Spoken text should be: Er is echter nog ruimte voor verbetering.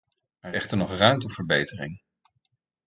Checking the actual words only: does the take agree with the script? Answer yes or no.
no